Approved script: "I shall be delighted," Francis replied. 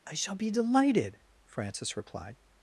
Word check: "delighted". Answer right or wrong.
right